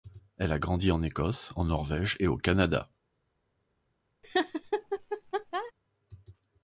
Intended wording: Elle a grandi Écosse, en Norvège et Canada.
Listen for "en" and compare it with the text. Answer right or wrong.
right